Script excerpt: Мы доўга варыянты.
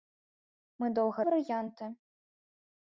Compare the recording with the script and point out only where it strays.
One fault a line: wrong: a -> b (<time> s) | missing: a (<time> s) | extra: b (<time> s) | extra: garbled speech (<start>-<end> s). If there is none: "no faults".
no faults